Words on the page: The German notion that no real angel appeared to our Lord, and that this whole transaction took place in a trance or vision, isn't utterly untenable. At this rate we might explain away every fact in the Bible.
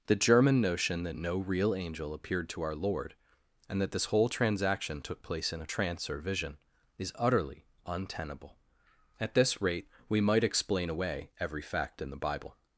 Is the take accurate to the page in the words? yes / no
no